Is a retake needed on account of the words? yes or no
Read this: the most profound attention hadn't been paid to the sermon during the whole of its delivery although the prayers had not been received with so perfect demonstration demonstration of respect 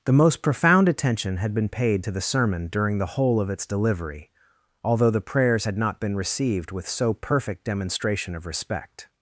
yes